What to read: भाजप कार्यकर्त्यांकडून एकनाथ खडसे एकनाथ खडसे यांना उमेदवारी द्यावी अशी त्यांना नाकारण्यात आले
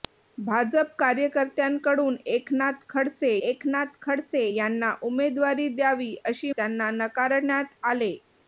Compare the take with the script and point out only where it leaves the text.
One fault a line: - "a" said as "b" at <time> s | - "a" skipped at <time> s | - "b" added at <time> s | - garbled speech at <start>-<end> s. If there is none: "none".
none